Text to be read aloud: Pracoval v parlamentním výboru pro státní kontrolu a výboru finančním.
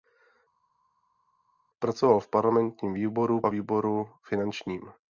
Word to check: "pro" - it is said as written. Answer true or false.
false